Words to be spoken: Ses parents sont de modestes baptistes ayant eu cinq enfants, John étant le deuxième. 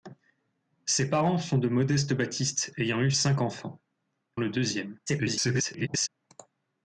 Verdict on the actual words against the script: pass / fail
fail